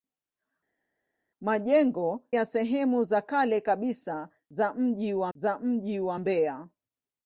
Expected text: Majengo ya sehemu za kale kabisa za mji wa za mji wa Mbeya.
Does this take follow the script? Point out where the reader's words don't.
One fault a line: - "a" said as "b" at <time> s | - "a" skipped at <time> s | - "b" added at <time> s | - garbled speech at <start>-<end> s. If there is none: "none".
none